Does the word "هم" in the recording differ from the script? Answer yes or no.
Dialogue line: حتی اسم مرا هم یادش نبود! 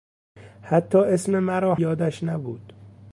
yes